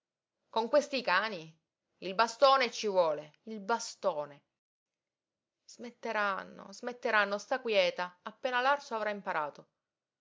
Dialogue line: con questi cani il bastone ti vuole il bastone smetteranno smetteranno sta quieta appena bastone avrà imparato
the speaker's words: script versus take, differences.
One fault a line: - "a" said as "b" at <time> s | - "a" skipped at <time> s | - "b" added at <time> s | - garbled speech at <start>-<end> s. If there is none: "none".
- "ti" said as "ci" at 2.7 s
- "bastone" said as "l'arso" at 8.6 s